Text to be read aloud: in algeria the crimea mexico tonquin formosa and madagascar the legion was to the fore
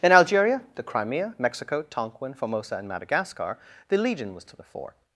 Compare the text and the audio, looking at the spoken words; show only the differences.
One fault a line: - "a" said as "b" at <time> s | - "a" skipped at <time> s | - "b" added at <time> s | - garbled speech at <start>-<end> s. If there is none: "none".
none